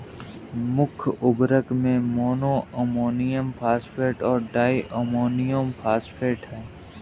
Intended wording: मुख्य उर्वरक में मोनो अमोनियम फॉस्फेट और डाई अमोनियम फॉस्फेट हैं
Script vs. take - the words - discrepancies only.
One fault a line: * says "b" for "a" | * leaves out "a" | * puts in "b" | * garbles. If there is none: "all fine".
all fine